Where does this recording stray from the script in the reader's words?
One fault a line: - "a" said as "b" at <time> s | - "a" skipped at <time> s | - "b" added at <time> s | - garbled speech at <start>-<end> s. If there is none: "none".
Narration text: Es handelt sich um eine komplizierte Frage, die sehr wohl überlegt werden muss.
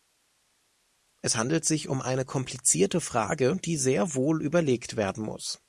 none